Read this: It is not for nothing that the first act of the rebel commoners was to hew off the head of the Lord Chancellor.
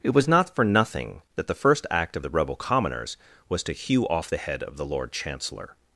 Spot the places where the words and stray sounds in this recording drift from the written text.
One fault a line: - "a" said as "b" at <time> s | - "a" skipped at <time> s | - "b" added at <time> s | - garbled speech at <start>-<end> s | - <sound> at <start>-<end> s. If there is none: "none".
- "is" said as "was" at 0.1 s